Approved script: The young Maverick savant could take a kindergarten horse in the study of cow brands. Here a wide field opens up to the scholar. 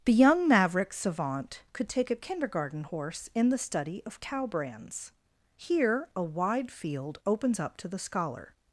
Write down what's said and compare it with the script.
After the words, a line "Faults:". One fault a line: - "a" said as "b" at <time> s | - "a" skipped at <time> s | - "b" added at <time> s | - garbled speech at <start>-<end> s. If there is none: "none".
The young Maverick savant could take a kindergarten horse in the study of cow brands. Here a wide field opens up to the scholar.
Faults:
none